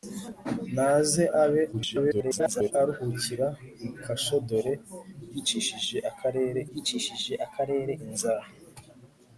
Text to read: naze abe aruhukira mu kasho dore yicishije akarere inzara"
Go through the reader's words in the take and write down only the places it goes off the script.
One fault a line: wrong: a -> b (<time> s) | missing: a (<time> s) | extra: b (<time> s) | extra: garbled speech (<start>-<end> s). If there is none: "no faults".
extra: garbled speech (1.7-2.7 s)
extra: yicishije akarere (6.7 s)